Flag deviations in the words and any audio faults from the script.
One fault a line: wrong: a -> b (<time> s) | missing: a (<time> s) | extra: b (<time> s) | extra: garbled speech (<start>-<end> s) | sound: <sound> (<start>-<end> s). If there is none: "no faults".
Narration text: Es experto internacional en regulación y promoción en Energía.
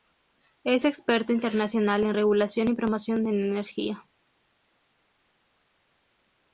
no faults